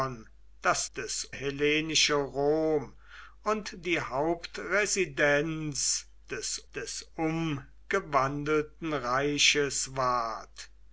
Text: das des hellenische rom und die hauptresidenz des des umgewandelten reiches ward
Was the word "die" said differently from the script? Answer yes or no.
no